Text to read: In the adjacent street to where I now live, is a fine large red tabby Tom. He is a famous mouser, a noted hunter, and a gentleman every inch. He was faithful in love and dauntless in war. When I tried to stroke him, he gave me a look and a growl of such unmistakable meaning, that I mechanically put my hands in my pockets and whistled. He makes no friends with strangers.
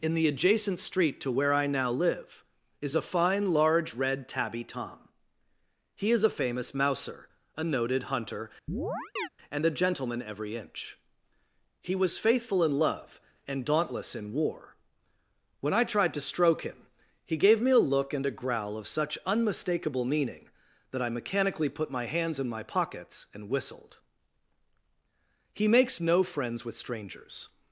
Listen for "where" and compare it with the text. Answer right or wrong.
right